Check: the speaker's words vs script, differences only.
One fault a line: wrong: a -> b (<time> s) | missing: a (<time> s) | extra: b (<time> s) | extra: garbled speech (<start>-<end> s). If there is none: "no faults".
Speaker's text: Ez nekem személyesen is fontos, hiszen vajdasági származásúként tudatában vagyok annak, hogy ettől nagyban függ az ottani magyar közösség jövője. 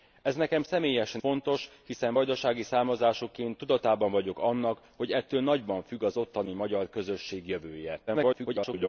missing: is (1.2 s)
extra: garbled speech (8.1-8.9 s)